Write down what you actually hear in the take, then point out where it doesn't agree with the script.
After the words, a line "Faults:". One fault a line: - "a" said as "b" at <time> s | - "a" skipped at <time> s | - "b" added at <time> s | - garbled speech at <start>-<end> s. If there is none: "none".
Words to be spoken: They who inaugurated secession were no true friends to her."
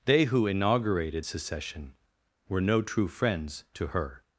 They who inaugurated secession were no true friends to her."
Faults:
none